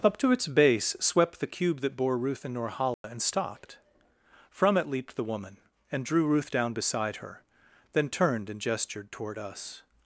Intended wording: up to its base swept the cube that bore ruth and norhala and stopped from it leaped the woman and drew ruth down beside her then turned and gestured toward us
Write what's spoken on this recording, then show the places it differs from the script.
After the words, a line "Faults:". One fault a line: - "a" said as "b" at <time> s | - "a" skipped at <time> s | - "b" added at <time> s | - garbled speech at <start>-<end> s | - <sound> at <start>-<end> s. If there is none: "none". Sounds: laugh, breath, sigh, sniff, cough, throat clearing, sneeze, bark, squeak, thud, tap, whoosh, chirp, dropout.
up to its base swept the cube that bore ruth and norhala and stopped from it leaped the woman and drew ruth down beside her then turned and gestured toward us
Faults:
- dropout at 2.9-3.0 s